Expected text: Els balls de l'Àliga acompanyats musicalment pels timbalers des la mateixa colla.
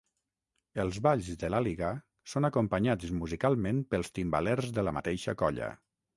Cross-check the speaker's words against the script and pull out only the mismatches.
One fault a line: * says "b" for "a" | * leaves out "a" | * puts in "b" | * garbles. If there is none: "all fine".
* puts in "són"
* says "de" for "des"